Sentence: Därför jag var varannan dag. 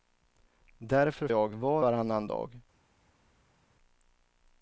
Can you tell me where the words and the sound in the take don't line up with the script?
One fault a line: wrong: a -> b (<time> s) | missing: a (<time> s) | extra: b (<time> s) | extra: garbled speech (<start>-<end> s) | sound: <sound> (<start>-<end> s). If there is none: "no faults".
no faults